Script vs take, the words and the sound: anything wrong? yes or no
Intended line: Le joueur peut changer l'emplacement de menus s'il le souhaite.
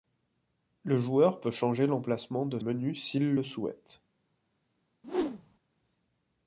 yes